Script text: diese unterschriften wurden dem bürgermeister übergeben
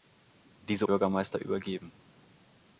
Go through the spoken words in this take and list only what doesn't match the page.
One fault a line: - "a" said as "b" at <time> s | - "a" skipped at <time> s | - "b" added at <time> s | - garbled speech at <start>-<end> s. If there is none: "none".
- "unterschriften wurden dem" skipped at 0.9 s